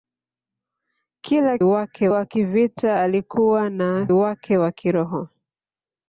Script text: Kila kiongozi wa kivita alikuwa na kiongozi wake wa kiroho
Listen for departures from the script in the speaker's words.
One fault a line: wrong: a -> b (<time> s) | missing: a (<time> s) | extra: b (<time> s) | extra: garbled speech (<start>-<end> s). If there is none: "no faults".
wrong: kiongozi -> wake (1.6 s)
missing: kiongozi (4.1 s)